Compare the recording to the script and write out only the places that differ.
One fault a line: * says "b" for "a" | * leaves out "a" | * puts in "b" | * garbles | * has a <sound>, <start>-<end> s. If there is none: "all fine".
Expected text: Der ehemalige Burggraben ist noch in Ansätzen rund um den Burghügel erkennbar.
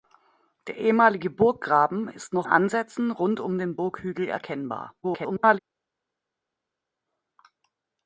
* leaves out "in"
* garbles